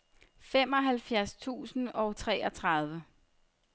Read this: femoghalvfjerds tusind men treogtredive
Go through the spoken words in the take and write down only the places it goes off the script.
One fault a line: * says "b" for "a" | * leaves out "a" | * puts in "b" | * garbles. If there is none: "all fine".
* says "og" for "men"